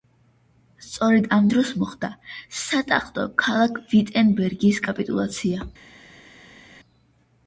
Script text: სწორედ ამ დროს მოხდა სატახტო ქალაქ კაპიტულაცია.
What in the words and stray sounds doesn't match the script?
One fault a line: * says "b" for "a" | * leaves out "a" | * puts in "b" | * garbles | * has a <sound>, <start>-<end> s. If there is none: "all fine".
* puts in "ვიტენბერგის"